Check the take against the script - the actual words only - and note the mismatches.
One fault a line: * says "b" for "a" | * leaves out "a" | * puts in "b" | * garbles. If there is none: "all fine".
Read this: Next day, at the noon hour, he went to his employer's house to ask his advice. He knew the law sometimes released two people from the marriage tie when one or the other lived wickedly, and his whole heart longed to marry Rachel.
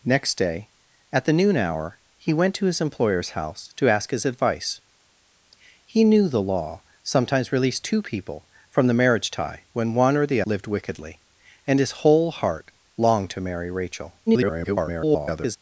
* leaves out "other"
* garbles